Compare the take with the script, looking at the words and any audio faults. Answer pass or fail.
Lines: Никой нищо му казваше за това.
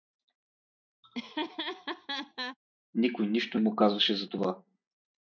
fail